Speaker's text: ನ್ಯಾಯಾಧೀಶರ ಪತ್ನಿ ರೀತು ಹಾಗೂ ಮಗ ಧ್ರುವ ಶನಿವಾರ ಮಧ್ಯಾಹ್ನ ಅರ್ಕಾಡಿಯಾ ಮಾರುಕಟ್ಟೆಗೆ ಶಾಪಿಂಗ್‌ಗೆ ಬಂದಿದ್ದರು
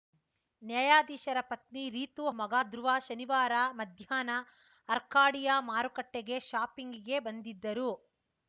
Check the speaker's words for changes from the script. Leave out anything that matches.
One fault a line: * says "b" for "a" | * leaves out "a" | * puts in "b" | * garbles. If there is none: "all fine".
* leaves out "ಹಾಗೂ"